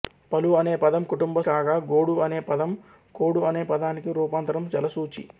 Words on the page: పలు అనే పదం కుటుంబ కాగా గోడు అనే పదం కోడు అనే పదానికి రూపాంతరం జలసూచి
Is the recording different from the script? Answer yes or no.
no